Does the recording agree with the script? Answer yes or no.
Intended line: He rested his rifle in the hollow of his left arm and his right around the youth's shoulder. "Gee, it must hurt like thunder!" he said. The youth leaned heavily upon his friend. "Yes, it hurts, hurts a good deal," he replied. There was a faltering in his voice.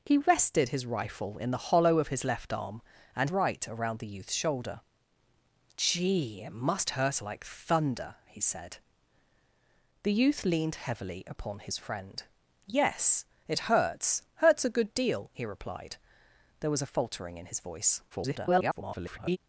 no